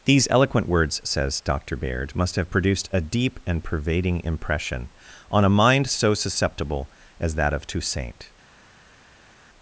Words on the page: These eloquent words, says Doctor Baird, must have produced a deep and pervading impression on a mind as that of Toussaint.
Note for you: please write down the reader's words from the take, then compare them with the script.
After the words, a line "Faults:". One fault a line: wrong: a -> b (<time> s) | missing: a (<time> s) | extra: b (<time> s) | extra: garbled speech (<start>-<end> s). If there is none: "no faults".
These eloquent words, says Doctor Baird, must have produced a deep and pervading impression on a mind so susceptible as that of Toussaint.
Faults:
extra: so susceptible (5.9 s)